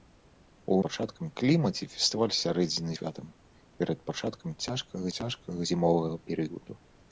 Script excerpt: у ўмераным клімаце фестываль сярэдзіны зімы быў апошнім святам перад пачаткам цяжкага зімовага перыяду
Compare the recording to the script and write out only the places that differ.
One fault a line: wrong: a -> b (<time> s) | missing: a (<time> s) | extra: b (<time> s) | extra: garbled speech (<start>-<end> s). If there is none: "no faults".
wrong: ўмераным -> пачаткам (0.9 s)
missing: зімы быў апошнім (2.9 s)
extra: цяжкага (5.2 s)